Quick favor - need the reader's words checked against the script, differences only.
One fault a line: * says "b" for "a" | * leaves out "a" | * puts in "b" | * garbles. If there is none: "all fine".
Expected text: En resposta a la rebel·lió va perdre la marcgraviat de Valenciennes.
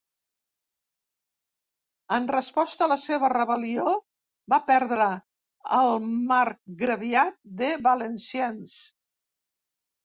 * puts in "seva"
* says "el" for "la"